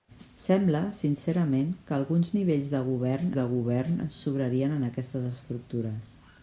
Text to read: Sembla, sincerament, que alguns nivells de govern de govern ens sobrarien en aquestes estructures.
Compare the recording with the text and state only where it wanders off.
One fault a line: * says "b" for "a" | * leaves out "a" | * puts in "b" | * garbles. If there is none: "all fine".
all fine